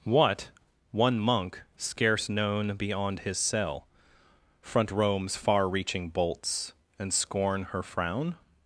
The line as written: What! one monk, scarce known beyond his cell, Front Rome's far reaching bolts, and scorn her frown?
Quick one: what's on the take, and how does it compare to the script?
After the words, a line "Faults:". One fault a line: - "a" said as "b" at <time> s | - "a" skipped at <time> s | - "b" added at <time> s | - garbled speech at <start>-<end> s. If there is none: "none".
What! one monk, scarce known beyond his cell, Front Rome's far reaching bolts, and scorn her frown?
Faults:
none